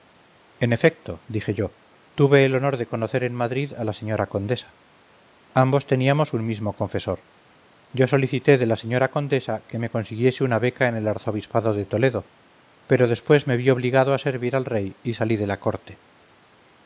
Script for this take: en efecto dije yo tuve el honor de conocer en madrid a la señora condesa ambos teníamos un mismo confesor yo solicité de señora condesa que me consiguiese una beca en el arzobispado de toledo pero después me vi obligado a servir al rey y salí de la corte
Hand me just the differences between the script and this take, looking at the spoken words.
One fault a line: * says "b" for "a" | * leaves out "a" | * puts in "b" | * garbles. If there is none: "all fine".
* puts in "la"